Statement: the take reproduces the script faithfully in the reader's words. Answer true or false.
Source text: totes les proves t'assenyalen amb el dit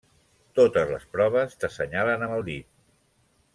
true